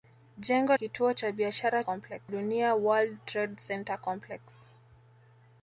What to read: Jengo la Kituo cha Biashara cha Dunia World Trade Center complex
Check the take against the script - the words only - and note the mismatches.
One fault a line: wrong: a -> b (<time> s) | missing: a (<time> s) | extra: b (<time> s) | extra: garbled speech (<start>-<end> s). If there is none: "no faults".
missing: la (0.8 s)
wrong: cha -> complex (1.8 s)